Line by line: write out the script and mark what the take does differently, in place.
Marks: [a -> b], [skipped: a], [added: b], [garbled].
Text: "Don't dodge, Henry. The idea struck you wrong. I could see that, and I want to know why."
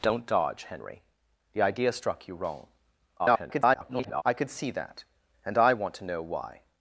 "Don't dodge, Henry. The idea struck you wrong. [garbled] I could see that, and I want to know why."